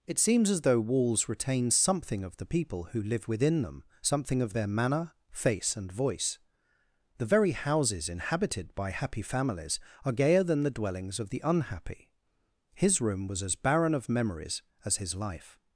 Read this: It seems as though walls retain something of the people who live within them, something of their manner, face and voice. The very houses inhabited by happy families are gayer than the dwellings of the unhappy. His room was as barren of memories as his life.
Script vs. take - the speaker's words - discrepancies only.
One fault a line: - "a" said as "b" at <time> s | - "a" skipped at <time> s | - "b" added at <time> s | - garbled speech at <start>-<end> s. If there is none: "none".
none